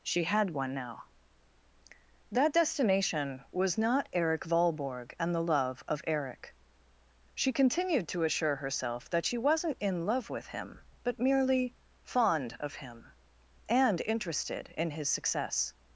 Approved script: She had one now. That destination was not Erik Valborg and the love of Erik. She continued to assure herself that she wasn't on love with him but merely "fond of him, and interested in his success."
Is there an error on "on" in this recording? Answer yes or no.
yes